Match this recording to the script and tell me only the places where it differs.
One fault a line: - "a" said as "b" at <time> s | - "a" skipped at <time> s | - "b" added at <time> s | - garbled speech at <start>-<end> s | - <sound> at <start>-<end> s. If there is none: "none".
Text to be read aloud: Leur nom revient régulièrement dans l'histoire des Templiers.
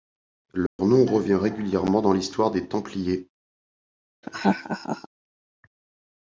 - dropout at 0.7-0.8 s
- laugh at 4.2-5.1 s